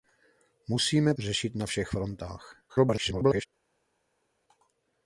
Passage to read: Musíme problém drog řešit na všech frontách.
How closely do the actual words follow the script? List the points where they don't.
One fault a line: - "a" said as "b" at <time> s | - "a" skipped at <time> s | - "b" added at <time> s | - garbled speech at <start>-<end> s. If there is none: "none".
- "problém drog" skipped at 1.1 s
- garbled speech at 2.7-3.5 s